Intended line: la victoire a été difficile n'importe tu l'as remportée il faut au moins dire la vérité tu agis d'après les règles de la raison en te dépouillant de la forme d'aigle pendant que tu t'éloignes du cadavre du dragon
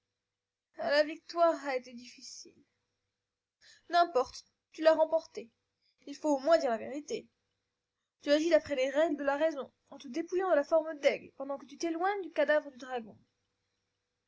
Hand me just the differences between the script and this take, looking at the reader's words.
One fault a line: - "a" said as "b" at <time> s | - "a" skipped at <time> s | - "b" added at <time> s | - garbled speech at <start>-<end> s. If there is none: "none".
none